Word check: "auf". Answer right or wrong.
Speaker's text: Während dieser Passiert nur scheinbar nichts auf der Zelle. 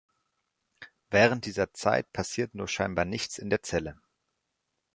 wrong